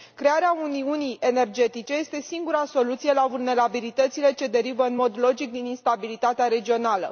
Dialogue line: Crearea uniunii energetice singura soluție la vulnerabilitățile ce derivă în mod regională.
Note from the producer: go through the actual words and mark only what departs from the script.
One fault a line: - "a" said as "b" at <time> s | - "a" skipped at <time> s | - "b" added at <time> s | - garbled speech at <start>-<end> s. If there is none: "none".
- "este" added at 1.9 s
- "logic din instabilitatea" added at 5.2 s